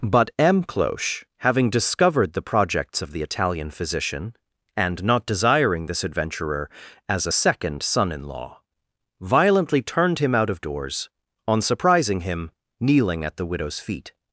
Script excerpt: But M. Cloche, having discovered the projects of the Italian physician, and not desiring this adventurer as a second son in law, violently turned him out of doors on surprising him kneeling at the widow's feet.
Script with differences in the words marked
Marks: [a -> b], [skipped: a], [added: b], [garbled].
But M. Cloche, having discovered the projects of the Italian physician, and not desiring this adventurer as a second son in law, violently turned him out of doors on surprising him kneeling at the widow's feet.